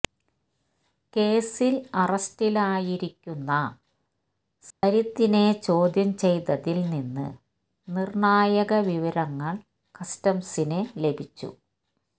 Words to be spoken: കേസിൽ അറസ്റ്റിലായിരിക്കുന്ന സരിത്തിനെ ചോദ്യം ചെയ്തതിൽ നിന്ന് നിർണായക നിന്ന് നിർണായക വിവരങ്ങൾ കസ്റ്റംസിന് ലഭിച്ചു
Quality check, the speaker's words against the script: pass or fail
fail